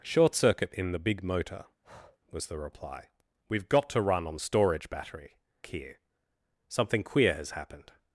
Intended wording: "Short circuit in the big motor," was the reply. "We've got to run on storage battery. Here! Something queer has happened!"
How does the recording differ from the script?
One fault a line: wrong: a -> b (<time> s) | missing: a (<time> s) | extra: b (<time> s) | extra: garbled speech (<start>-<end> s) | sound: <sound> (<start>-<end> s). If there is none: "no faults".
sound: breath (1.8-2.2 s)